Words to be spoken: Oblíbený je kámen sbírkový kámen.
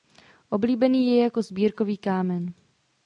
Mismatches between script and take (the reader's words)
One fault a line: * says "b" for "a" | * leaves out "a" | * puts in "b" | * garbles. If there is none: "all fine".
* says "jako" for "kámen"